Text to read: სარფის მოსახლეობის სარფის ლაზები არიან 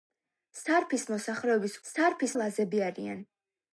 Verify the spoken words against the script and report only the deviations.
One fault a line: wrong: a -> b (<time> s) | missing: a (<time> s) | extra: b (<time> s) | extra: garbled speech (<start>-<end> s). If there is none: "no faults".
no faults